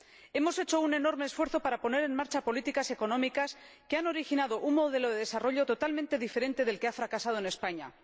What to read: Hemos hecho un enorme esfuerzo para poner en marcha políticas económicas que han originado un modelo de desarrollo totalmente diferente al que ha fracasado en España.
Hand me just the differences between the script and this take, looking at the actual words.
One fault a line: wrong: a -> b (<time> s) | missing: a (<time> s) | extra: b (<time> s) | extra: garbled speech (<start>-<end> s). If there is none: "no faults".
wrong: al -> del (6.6 s)